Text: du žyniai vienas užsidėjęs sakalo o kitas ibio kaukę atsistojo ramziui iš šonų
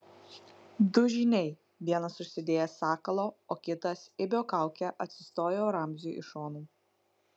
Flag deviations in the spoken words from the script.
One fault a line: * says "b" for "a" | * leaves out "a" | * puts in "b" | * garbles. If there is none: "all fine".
all fine